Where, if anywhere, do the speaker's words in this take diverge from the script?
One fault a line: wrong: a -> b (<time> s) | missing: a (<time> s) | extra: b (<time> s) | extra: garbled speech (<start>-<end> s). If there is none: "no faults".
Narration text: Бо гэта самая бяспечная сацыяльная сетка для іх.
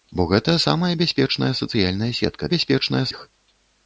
wrong: для -> бяспечная (2.5 s)